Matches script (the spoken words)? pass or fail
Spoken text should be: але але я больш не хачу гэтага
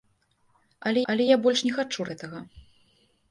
pass